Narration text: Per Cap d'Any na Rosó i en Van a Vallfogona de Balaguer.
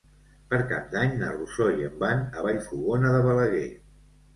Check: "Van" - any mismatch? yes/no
no